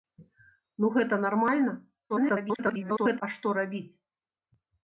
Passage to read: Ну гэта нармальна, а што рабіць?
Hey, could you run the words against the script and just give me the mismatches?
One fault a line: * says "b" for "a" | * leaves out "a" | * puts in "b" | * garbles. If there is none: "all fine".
* garbles